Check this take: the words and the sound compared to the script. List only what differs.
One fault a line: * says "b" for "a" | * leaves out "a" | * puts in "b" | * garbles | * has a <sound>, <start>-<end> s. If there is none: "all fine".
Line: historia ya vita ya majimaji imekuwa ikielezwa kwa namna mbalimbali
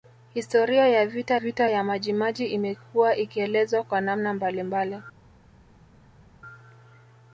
* puts in "vita"